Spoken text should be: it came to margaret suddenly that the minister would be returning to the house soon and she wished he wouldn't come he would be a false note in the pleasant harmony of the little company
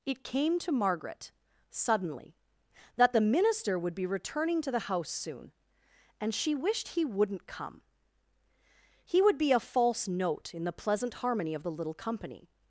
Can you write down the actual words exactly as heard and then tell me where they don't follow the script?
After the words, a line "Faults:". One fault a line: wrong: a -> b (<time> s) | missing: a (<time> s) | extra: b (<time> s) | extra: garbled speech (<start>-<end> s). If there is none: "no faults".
it came to margaret suddenly that the minister would be returning to the house soon and she wished he wouldn't come he would be a false note in the pleasant harmony of the little company
Faults:
no faults